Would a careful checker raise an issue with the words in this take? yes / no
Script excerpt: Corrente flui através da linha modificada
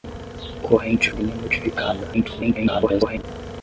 yes